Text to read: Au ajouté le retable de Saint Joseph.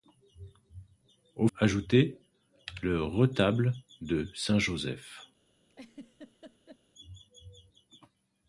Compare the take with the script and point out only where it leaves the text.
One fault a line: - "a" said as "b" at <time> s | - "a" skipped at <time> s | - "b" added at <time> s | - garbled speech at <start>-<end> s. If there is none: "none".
none